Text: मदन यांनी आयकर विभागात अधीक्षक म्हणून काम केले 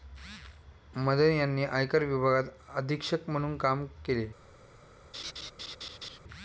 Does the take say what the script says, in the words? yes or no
yes